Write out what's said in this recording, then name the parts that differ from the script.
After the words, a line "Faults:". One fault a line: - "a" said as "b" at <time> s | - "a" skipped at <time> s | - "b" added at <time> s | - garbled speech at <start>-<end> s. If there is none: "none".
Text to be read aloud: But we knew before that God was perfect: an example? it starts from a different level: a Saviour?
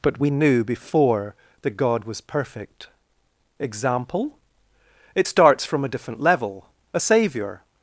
But we knew before that God was perfect: example? it starts from a different level: a Saviour?
Faults:
- "an" skipped at 2.9 s